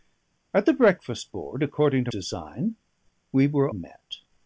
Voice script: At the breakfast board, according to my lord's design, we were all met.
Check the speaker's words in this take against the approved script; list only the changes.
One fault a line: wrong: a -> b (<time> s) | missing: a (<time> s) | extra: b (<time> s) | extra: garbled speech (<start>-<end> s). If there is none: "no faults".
missing: my lord's (2.1 s)
missing: all (3.7 s)